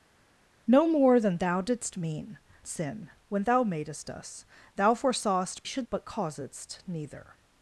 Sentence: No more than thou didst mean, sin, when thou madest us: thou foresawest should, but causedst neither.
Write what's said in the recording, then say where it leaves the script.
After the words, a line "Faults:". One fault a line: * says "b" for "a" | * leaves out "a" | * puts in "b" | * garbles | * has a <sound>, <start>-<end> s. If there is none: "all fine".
No more than thou didst mean, sin, when thou madest us: thou foresawest should, but causedst neither.
Faults:
all fine